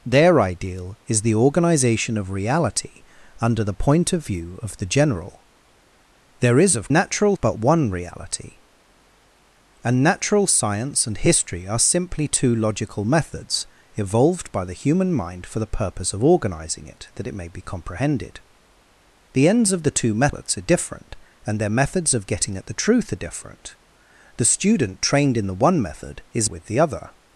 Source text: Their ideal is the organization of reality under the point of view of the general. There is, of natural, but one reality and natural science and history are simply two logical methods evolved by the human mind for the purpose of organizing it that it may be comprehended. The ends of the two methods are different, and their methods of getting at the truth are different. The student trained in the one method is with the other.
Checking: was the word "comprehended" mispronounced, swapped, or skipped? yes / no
no